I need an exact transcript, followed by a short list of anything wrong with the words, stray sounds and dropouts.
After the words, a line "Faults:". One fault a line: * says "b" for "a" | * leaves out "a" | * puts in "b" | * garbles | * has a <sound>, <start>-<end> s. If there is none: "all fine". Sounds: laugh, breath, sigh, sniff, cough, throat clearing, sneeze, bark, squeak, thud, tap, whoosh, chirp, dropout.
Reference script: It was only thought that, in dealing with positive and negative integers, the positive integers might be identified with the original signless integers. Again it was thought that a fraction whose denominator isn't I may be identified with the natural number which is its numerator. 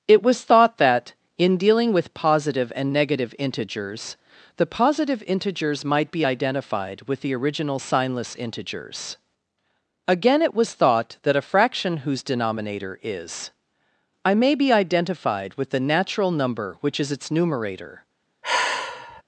It was thought that, in dealing with positive and negative integers, the positive integers might be identified with the original signless integers. Again it was thought that a fraction whose denominator is I may be identified with the natural number which is its numerator.
Faults:
* leaves out "only"
* says "is" for "isn't"
* has a sigh, 18.4-19.2 s